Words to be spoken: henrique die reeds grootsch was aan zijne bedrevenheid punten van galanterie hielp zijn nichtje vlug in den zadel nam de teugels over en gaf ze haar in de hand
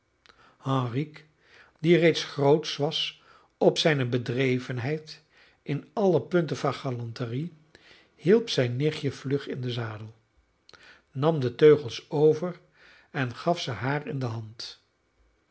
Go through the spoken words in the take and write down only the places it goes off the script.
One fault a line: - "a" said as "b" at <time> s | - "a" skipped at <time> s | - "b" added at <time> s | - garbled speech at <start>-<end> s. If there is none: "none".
- "aan" said as "op" at 3.6 s
- "in alle" added at 5.6 s